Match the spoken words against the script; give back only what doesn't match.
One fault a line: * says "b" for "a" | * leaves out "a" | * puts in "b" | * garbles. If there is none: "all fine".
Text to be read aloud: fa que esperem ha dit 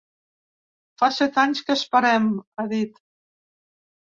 * puts in "set anys"